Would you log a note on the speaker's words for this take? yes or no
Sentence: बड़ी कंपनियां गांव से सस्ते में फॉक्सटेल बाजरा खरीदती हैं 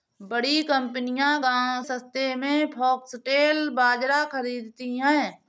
yes